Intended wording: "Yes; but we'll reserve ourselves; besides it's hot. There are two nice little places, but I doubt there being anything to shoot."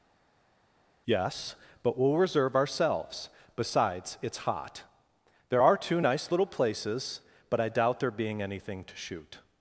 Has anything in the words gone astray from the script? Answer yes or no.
no